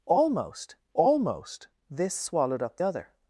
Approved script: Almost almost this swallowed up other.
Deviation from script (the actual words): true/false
false